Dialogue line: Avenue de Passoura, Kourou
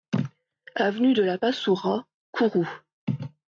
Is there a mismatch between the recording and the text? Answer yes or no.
yes